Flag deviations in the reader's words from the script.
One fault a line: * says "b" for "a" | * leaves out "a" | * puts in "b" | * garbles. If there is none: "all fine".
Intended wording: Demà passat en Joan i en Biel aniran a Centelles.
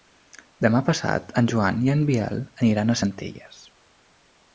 all fine